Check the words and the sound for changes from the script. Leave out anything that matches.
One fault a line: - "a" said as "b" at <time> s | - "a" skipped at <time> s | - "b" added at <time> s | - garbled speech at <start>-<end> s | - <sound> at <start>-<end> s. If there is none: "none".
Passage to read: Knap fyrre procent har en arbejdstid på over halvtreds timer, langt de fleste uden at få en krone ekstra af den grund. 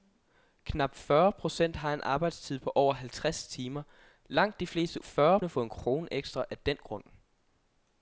- "uden" said as "fyrre" at 5.0 s